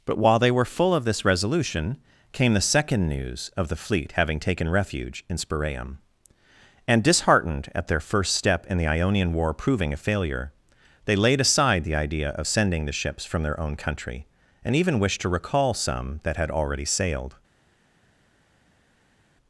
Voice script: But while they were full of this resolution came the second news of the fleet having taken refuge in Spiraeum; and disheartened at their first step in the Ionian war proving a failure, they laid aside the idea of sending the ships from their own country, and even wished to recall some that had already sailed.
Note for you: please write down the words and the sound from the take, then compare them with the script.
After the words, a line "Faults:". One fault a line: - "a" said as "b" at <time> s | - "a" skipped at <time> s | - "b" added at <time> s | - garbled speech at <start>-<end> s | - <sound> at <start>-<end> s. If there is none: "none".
But while they were full of this resolution came the second news of the fleet having taken refuge in Spiraeum; and disheartened at their first step in the Ionian war proving a failure, they laid aside the idea of sending the ships from their own country, and even wished to recall some that had already sailed.
Faults:
none